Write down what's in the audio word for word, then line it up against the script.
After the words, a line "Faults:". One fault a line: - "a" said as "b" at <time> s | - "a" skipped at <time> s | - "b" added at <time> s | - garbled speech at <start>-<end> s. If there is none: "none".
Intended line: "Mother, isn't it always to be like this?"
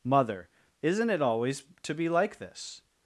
"Mother, isn't it always to be like this?"
Faults:
none